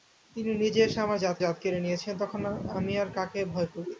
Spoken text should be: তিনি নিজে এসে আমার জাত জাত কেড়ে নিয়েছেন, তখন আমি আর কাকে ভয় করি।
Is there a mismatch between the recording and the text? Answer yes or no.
no